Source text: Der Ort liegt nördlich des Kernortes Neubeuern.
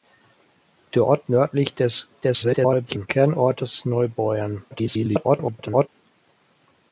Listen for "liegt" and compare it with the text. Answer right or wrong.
wrong